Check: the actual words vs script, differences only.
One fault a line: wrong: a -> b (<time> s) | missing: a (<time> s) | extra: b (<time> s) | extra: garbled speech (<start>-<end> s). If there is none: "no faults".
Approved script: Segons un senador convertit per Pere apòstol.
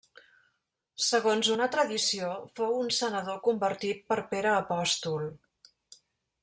extra: una tradició fou (1.5 s)